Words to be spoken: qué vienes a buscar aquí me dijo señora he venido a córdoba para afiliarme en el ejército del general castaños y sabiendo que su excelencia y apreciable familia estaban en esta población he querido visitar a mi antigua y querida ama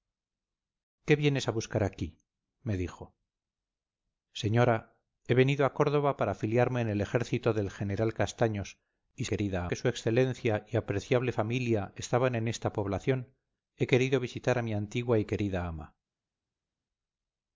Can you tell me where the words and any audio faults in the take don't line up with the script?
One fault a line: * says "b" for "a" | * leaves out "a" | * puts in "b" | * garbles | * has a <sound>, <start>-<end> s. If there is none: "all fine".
* says "querida" for "sabiendo"